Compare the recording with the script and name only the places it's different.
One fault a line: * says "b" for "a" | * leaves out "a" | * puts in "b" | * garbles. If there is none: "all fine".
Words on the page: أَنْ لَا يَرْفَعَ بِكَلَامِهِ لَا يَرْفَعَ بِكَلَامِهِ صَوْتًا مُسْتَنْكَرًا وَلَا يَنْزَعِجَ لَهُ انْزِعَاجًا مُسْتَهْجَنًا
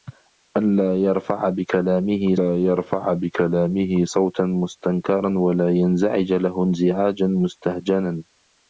all fine